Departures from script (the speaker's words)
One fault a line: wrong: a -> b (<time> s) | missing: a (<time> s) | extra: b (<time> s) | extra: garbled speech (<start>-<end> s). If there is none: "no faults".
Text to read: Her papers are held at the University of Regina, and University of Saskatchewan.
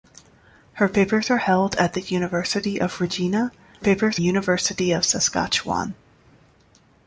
wrong: and -> papers (3.8 s)